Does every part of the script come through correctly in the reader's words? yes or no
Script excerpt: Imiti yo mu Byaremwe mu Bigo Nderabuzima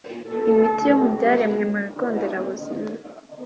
yes